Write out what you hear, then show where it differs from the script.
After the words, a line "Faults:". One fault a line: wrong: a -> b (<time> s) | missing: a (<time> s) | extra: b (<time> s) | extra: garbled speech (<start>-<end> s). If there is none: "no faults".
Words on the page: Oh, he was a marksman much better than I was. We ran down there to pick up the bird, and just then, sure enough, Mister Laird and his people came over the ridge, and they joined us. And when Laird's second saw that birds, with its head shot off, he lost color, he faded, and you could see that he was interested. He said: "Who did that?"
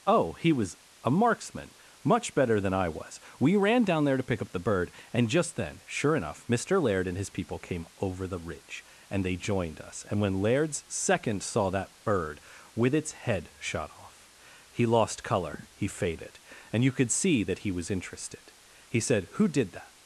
Oh, he was a marksman much better than I was. We ran down there to pick up the bird, and just then, sure enough, Mister Laird and his people came over the ridge, and they joined us. And when Laird's second saw that bird, with its head shot off, he lost color, he faded, and you could see that he was interested. He said: "Who did that?"
Faults:
wrong: birds -> bird (12.0 s)